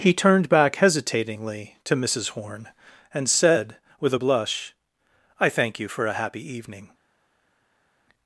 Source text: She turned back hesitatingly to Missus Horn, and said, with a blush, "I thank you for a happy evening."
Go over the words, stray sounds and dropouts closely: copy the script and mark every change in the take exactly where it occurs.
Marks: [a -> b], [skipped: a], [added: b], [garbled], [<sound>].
[She -> He] turned back hesitatingly to Missus Horn, and said, with a blush, "I thank you for a happy evening."